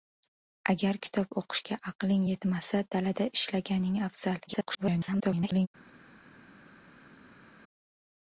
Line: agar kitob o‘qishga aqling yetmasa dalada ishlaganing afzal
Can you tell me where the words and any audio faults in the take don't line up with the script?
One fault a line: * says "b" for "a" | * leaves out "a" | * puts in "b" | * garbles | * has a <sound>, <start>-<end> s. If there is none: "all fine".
* garbles